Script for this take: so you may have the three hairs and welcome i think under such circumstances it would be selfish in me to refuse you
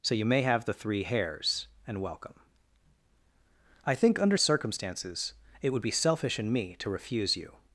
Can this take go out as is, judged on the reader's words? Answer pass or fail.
fail